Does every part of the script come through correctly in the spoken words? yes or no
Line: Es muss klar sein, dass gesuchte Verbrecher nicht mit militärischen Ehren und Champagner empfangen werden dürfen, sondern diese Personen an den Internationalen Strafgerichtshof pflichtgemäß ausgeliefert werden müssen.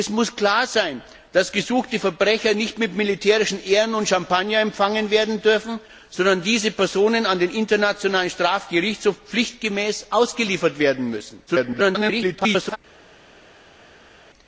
no